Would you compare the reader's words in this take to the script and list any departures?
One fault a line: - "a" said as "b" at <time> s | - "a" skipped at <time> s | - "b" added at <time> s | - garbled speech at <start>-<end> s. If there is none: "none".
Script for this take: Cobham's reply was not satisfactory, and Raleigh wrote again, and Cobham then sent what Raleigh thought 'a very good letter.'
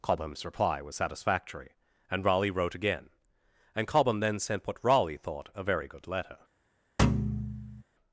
- "not" skipped at 0.9 s